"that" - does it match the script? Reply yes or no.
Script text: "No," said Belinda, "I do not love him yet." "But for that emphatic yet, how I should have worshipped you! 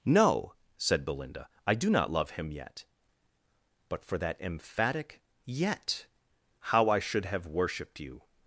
yes